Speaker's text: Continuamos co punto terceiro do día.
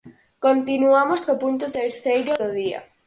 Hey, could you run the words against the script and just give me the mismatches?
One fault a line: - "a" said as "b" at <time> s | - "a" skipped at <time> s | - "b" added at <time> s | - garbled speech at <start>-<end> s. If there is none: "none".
none